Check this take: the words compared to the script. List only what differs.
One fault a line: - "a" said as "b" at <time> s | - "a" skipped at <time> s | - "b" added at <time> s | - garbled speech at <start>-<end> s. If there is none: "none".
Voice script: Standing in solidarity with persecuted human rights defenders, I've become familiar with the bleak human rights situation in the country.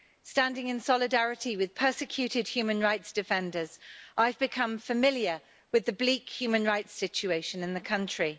none